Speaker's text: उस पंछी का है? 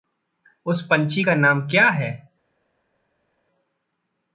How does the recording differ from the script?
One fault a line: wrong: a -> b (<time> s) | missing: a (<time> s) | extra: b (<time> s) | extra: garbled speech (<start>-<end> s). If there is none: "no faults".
extra: नाम क्या (1.3 s)